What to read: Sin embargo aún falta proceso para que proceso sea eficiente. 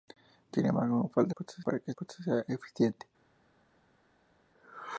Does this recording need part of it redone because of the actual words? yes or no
no